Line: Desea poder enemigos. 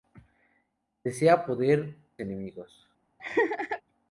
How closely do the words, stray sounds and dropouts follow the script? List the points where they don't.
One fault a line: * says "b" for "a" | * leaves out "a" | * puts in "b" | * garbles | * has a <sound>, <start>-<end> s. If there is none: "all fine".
* has a laugh, 3.2-3.8 s